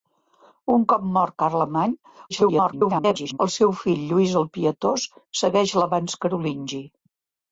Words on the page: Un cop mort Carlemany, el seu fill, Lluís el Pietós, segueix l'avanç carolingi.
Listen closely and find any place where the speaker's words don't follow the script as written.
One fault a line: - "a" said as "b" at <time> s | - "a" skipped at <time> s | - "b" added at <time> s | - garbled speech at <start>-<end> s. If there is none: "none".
- garbled speech at 2.3-3.4 s